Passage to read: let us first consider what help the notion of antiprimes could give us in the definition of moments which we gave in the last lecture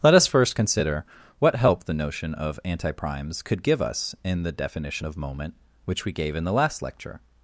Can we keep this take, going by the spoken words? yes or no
no